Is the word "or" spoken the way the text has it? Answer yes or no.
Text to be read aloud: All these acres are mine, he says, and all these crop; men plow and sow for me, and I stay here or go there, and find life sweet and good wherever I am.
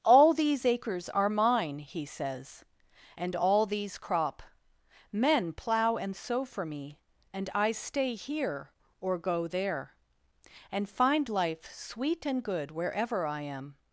yes